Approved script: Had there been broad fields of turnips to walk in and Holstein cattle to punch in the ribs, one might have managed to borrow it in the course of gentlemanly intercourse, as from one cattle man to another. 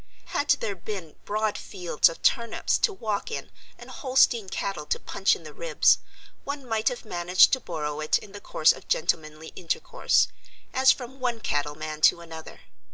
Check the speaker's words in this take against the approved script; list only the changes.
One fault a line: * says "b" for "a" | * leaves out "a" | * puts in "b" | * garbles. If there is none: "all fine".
all fine